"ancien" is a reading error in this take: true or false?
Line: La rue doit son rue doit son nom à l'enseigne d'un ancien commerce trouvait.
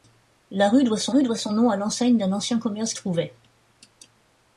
false